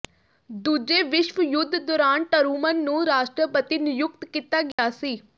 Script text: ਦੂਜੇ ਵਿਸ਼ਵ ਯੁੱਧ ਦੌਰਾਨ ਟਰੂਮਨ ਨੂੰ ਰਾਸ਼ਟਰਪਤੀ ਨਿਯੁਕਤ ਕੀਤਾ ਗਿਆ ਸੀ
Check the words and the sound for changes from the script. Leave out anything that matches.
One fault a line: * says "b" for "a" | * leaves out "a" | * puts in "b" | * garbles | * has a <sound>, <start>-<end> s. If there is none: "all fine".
* has a dropout, 4.7-4.8 s